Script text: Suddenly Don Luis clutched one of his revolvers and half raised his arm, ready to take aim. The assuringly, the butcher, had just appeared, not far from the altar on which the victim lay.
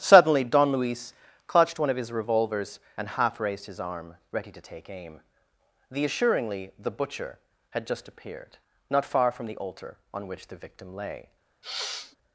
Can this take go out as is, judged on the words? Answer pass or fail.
pass